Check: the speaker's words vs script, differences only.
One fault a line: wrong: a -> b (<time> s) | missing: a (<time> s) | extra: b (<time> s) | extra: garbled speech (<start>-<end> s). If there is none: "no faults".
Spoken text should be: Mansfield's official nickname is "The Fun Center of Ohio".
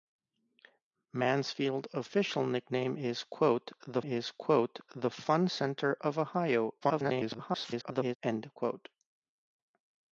extra: is The (4.0 s)
extra: garbled speech (6.8-8.2 s)